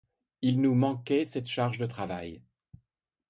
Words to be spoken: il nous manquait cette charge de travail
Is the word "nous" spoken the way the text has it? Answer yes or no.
yes